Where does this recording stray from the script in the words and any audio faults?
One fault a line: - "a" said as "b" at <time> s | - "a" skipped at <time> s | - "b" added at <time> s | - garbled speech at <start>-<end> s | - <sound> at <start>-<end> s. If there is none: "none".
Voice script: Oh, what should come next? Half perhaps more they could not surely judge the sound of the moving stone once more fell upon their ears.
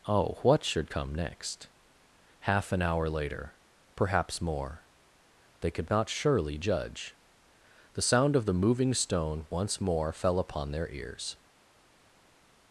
- "an hour later" added at 2.7 s